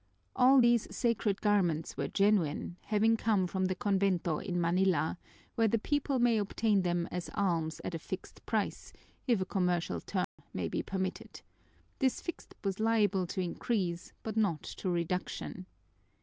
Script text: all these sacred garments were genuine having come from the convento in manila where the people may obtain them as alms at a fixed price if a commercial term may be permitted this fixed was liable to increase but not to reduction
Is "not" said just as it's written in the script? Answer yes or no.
yes